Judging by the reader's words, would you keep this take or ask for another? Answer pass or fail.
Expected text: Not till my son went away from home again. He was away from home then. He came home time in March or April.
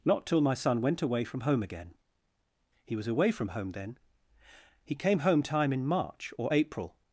pass